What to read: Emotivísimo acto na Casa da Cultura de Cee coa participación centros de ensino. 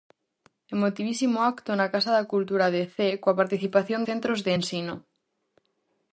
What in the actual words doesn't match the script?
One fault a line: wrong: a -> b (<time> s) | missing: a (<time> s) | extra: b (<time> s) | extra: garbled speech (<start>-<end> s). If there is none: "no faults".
no faults